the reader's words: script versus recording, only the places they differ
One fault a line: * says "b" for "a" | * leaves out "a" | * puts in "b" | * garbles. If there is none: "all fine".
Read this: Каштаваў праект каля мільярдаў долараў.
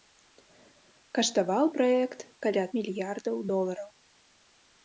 all fine